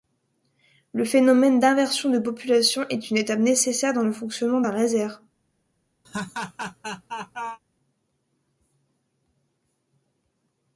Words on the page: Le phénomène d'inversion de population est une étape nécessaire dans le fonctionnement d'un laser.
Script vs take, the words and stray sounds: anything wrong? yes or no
yes